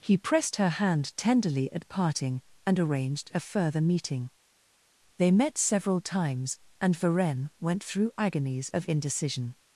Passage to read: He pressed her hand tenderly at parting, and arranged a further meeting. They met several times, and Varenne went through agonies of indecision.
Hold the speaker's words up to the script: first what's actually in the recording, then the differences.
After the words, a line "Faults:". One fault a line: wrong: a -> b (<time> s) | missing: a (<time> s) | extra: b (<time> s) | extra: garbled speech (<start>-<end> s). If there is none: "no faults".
He pressed her hand tenderly at parting, and arranged a further meeting. They met several times, and Varenne went through agonies of indecision.
Faults:
no faults